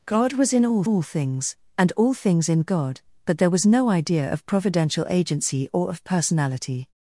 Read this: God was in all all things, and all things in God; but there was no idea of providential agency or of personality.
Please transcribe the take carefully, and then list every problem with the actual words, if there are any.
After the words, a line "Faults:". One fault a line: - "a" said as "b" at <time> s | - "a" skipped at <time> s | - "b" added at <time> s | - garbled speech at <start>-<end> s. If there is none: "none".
God was in all all things, and all things in God; but there was no idea of providential agency or of personality.
Faults:
none